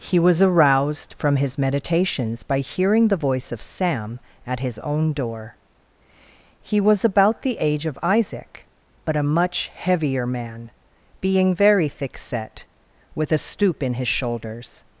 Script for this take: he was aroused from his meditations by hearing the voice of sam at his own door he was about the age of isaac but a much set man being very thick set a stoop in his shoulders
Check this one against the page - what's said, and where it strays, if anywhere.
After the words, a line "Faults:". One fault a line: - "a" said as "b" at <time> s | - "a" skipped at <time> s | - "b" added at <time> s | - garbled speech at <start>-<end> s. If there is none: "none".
he was aroused from his meditations by hearing the voice of sam at his own door he was about the age of isaac but a much heavier man being very thick set with a stoop in his shoulders
Faults:
- "set" said as "heavier" at 9.8 s
- "with" added at 13.1 s